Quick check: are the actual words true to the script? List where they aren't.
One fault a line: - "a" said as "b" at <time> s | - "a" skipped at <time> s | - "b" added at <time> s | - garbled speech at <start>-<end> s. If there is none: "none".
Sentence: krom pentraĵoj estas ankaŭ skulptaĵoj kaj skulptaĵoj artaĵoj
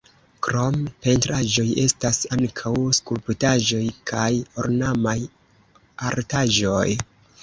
- "skulptaĵoj" said as "ornamaj" at 4.6 s